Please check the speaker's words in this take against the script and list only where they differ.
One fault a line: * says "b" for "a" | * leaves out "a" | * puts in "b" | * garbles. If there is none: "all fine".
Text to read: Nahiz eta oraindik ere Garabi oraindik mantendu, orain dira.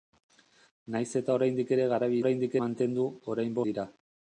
all fine